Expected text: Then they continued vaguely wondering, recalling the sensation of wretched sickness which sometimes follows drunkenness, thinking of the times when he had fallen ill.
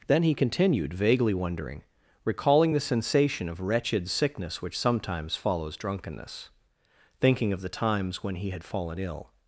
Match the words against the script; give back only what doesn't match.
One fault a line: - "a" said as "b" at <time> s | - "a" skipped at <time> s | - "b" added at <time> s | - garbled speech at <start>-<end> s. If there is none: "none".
- "they" said as "he" at 0.2 s